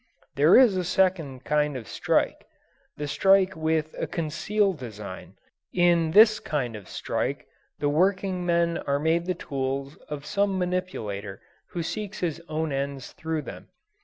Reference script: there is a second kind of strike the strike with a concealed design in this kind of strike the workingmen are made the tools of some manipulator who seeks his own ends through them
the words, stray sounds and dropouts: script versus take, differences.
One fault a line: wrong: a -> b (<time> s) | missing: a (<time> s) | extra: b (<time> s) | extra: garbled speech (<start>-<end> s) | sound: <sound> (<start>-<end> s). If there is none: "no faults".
no faults